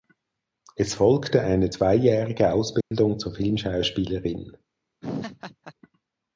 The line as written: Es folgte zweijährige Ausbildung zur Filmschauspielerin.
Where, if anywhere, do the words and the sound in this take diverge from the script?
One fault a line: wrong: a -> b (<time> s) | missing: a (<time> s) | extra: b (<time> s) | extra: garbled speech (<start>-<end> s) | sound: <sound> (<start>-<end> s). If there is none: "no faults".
extra: eine (1.4 s)
sound: dropout (2.8-2.9 s)
sound: laugh (5.0-5.7 s)